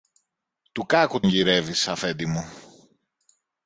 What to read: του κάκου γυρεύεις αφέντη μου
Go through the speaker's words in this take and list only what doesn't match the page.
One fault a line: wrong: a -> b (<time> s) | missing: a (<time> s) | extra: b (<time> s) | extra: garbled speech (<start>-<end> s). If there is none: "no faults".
no faults